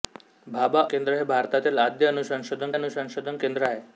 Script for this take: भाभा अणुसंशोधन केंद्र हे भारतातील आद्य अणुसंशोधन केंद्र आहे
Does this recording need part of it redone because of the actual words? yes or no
yes